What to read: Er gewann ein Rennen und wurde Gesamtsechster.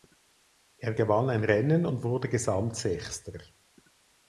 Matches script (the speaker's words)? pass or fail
pass